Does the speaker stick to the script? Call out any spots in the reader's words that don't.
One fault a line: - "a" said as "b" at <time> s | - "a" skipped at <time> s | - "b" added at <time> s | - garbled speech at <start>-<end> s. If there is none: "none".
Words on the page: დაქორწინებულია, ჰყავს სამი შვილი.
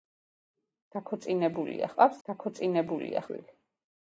- "სამი" said as "დაქორწინებულია" at 2.3 s